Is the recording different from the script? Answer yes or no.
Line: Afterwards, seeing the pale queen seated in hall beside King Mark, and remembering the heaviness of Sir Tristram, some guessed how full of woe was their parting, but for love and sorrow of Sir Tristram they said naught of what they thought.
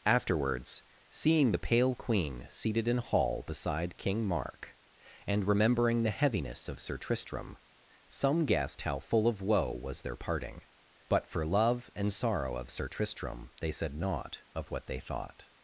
no